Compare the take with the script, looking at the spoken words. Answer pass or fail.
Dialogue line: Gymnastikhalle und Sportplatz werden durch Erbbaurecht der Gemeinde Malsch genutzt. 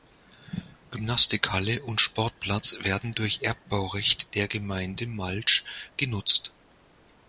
pass